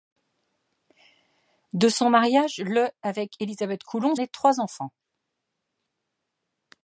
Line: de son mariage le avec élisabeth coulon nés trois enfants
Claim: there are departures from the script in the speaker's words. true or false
false